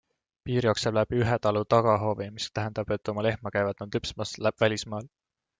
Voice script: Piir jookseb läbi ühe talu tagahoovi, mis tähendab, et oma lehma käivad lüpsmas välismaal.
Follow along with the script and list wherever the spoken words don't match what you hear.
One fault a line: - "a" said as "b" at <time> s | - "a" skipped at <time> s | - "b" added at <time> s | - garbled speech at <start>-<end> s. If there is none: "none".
- "nad" added at 3.9 s